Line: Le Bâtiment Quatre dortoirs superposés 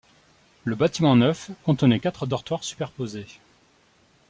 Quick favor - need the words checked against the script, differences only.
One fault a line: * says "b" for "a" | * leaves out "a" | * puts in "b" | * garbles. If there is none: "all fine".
* puts in "Neuf contenait"